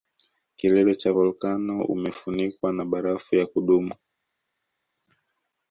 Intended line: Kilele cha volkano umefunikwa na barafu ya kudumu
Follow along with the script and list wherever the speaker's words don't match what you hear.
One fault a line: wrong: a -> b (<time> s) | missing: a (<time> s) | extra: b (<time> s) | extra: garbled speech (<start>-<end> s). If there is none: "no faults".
no faults